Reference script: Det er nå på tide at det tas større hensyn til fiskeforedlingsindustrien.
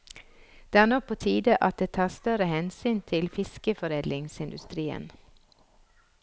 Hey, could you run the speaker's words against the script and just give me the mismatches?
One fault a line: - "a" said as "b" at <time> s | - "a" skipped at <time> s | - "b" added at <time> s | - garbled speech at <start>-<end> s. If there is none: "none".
none